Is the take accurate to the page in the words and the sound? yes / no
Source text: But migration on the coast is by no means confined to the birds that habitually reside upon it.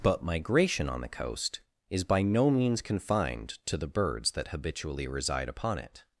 yes